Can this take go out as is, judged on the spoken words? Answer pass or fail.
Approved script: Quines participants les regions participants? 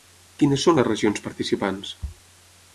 fail